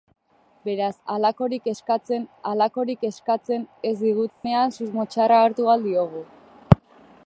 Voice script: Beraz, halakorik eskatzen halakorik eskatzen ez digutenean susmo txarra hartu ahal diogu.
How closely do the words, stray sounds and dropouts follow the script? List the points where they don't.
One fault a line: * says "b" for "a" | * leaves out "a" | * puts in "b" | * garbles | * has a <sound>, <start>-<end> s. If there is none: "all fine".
* has a dropout, 4.3-4.4 s